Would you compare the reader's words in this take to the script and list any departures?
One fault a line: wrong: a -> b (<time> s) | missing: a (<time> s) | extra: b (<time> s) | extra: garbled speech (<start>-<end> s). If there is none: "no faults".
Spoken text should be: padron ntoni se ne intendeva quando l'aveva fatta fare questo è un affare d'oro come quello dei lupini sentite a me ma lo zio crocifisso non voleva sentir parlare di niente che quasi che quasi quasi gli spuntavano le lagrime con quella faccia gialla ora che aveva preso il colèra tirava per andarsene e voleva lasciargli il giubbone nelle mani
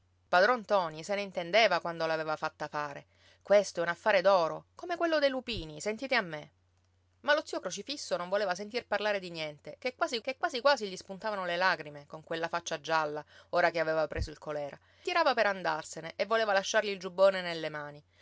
no faults